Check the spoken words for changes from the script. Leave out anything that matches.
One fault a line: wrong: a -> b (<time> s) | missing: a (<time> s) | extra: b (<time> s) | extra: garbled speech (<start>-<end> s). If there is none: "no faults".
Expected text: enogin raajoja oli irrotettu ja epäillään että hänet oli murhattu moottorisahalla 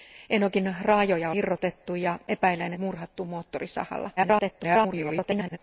missing: oli (1.3 s)
missing: että hänet oli (2.7 s)
extra: garbled speech (4.2-5.6 s)